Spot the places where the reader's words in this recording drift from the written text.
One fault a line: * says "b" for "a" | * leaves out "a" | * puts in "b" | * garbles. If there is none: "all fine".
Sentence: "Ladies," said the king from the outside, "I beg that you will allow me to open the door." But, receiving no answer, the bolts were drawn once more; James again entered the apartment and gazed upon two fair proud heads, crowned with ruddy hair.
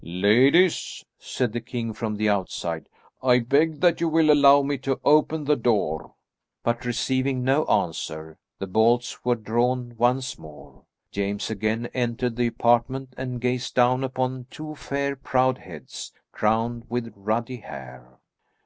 * puts in "down"